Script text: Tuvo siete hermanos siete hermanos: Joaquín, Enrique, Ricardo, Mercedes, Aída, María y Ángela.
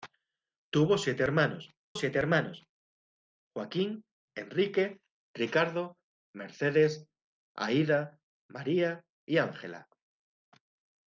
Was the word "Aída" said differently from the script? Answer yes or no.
no